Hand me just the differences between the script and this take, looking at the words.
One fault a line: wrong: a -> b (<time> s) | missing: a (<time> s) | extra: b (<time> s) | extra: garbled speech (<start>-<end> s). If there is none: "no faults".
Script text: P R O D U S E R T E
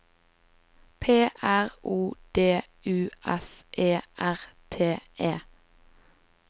no faults